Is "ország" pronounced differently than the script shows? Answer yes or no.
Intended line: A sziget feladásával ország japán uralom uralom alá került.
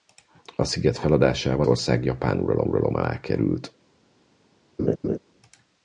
no